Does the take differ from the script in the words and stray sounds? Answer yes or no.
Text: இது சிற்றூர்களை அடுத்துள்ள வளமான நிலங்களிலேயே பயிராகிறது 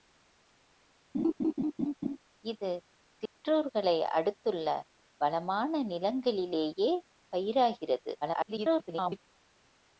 yes